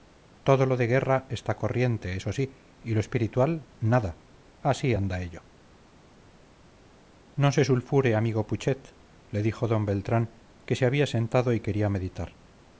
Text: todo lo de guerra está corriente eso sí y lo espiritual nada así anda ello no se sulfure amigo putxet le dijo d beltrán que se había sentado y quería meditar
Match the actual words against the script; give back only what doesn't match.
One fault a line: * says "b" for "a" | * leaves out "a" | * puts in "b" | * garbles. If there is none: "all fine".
all fine